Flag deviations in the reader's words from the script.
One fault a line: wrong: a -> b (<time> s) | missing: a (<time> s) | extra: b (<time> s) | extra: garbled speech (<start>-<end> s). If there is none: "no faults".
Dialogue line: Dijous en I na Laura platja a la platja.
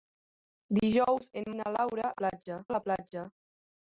no faults